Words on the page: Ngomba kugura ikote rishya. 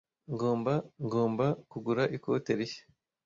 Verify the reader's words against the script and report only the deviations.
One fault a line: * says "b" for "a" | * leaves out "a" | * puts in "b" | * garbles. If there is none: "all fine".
* puts in "ngomba"